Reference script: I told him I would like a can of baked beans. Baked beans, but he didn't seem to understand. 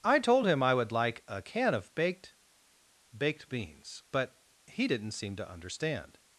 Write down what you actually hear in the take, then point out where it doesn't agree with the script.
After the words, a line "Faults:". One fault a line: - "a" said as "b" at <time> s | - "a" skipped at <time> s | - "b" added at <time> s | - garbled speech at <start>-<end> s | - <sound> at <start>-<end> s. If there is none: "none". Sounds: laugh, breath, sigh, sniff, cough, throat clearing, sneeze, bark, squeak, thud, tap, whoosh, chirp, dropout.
I told him I would like a can of baked. Baked beans, but he didn't seem to understand.
Faults:
- "beans" skipped at 2.4 s